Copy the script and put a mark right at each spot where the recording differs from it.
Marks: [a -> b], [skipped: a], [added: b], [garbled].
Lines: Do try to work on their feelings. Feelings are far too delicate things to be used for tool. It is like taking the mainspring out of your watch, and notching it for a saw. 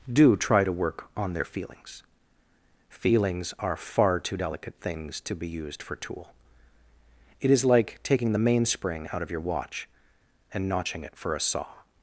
Do try to work on their feelings. Feelings are far too delicate things to be used for tool. It is like taking the mainspring out of your watch, and notching it for a saw.